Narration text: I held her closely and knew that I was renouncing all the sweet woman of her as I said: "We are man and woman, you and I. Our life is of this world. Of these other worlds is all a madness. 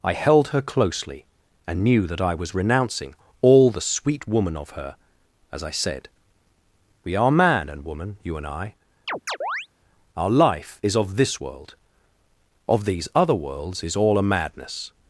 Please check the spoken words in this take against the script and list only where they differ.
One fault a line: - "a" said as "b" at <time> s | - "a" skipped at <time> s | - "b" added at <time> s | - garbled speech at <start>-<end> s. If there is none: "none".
none